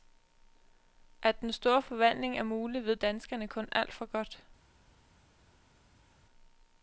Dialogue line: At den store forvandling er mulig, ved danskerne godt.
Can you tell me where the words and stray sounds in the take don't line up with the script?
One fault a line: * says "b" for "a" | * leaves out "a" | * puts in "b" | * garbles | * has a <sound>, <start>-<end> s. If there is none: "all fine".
* puts in "kun alt for"